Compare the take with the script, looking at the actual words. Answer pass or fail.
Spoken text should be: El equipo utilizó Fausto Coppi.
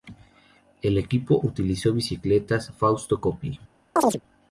fail